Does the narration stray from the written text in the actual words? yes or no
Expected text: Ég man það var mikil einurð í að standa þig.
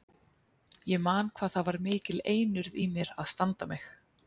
yes